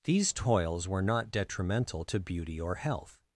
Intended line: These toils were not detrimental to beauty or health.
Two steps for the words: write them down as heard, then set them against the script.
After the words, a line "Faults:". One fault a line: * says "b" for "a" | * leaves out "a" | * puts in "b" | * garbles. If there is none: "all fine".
These toils were not detrimental to beauty or health.
Faults:
all fine